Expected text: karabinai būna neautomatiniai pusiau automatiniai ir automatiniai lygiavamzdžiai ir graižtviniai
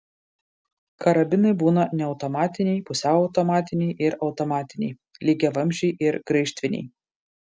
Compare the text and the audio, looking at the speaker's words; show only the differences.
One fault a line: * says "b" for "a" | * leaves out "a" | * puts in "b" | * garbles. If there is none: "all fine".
all fine